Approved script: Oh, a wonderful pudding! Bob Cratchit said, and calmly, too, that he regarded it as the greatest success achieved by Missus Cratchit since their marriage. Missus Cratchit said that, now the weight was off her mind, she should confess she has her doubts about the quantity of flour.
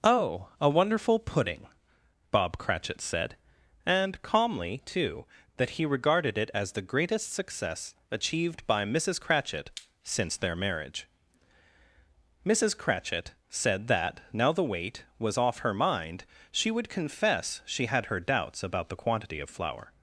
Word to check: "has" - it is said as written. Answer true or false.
false